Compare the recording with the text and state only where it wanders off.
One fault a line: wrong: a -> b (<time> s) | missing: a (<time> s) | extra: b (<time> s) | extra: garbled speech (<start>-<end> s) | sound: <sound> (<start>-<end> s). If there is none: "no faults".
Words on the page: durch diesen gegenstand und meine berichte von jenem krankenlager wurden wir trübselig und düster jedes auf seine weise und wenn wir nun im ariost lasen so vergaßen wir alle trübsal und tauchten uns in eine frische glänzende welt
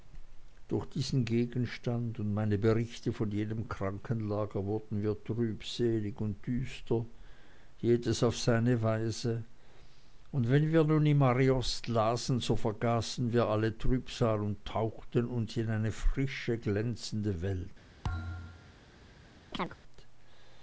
sound: thud (18.0-18.8 s)
sound: chirp (19.5-19.8 s)